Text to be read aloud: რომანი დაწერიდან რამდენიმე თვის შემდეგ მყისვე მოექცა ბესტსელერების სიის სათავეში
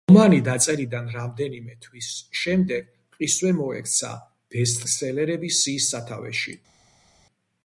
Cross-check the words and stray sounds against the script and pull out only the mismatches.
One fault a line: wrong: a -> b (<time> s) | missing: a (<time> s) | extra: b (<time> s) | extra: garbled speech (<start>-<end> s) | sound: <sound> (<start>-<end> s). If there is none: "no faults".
no faults